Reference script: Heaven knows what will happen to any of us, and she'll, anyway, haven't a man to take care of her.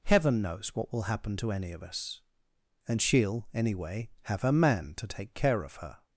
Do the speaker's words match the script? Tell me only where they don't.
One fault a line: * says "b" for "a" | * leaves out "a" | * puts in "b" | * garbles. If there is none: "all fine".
* says "have" for "haven't"